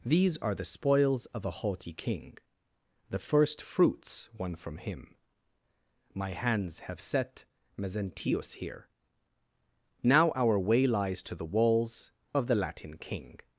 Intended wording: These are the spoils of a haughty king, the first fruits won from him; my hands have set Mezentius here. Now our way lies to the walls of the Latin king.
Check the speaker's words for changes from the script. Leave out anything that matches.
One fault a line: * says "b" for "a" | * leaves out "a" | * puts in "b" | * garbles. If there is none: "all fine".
all fine